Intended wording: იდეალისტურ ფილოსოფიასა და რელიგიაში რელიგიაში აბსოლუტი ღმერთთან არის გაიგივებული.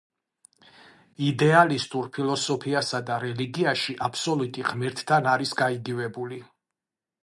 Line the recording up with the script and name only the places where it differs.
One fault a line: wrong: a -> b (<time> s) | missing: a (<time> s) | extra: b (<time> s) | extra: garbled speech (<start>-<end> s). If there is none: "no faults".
missing: რელიგიაში (4.0 s)